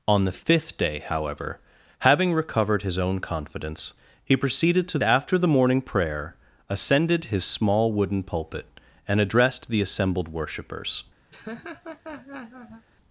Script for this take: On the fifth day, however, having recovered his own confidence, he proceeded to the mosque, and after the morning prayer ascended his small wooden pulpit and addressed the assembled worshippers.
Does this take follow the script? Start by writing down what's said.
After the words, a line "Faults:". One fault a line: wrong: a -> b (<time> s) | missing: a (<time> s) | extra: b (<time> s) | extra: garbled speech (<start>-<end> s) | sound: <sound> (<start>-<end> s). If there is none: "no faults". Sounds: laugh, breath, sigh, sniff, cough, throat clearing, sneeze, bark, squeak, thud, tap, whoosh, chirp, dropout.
On the fifth day, however, having recovered his own confidence, he proceeded to after the morning prayer ascended his small wooden pulpit and addressed the assembled worshippers.
Faults:
missing: the mosque and (5.0 s)
sound: laugh (11.3-12.9 s)